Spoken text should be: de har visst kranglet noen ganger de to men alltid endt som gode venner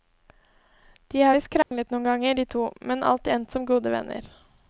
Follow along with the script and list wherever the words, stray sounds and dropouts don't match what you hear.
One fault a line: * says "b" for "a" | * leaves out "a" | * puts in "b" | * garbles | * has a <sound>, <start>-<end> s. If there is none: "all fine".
* has a dropout, 1.6-1.7 s